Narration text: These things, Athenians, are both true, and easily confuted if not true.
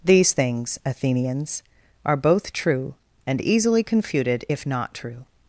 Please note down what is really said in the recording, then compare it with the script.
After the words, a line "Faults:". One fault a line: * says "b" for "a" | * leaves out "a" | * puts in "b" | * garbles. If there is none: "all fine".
These things, Athenians, are both true, and easily confuted if not true.
Faults:
all fine